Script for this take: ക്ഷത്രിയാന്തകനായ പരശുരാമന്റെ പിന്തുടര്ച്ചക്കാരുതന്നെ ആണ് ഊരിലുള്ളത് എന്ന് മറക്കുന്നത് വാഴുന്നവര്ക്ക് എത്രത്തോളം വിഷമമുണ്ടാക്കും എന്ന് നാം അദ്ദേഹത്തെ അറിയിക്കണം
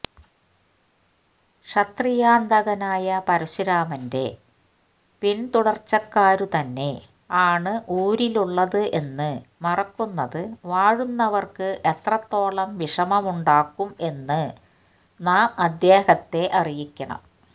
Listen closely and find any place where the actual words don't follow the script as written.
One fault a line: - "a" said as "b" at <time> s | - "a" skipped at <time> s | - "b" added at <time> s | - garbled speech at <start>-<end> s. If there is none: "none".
none